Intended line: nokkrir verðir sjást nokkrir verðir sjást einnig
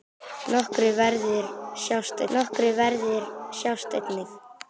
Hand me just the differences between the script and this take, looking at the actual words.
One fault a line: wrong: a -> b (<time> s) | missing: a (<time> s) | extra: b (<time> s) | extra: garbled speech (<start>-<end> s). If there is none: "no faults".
no faults